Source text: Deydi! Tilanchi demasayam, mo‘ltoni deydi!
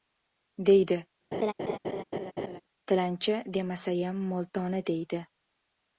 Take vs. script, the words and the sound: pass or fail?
fail